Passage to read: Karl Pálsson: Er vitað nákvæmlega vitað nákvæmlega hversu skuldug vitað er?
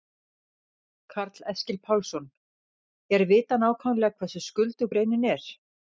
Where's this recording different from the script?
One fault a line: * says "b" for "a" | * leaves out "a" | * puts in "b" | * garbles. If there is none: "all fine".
* puts in "Eskil"
* leaves out "vitað nákvæmlega"
* says "greinin" for "vitað"